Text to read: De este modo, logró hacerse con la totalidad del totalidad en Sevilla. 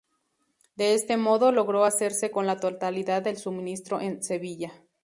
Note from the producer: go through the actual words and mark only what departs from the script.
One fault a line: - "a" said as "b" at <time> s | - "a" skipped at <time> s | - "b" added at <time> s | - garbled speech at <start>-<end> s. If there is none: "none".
- "totalidad" said as "suministro" at 3.4 s